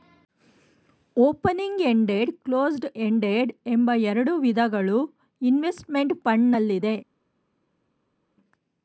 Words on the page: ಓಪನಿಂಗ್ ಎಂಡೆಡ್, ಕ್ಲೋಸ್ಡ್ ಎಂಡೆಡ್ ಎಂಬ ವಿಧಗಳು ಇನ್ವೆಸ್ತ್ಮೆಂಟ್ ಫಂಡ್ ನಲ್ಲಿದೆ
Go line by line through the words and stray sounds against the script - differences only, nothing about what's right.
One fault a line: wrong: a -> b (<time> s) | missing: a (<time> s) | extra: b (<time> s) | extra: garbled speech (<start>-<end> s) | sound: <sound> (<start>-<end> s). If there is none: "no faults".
extra: ಎರಡು (4.0 s)